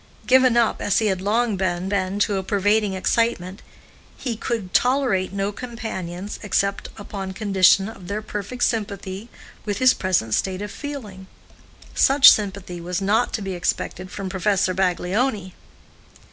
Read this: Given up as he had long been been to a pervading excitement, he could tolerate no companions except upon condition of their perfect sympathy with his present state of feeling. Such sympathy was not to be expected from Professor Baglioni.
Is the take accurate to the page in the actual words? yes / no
yes